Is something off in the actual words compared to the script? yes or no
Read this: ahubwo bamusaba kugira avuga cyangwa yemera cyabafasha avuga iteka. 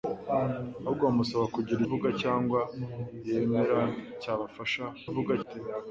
no